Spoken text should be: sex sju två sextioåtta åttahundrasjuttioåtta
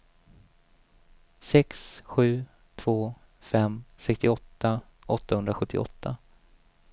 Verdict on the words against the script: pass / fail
fail